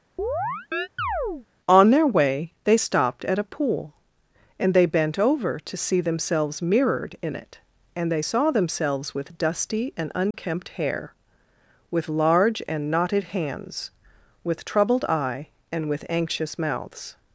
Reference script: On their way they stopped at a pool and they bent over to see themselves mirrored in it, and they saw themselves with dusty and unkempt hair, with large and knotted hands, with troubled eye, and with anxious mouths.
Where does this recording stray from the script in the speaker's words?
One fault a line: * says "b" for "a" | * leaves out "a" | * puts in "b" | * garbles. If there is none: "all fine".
all fine